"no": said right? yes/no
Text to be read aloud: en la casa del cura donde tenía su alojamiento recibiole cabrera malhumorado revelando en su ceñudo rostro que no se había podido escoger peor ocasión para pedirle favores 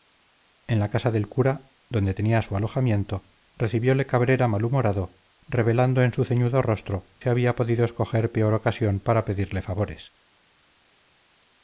no